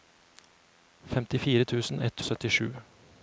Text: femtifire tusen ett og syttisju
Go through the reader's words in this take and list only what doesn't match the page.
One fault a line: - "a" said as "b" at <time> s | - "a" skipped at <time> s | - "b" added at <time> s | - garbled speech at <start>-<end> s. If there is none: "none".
none